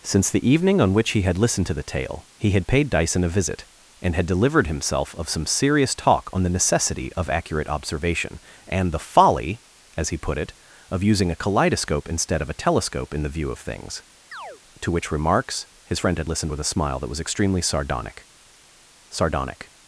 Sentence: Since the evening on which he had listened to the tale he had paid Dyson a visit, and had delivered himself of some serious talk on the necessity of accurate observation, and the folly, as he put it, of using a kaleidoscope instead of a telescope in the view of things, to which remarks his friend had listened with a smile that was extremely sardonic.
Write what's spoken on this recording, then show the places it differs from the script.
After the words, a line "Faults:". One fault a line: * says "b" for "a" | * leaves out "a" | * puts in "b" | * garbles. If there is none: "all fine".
Since the evening on which he had listened to the tale he had paid Dyson a visit, and had delivered himself of some serious talk on the necessity of accurate observation, and the folly, as he put it, of using a kaleidoscope instead of a telescope in the view of things, to which remarks his friend had listened with a smile that was extremely sardonic sardonic.
Faults:
* puts in "sardonic"